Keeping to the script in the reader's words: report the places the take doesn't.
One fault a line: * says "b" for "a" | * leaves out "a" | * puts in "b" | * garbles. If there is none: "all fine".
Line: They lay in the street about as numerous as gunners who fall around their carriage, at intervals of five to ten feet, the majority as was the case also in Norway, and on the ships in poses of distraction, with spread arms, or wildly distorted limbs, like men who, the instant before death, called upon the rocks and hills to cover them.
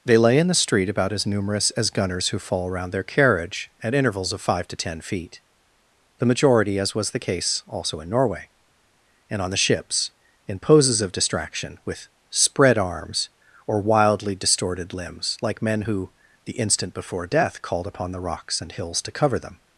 all fine